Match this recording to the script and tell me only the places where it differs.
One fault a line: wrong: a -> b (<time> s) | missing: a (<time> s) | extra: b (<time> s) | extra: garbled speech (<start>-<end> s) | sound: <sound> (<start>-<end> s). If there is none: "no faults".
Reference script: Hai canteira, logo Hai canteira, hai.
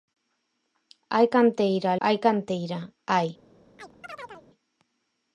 missing: logo (1.9 s)
sound: chirp (3.8-4.5 s)